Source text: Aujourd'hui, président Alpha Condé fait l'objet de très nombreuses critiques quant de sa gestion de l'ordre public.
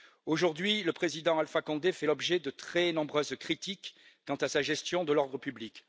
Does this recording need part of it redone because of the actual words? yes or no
yes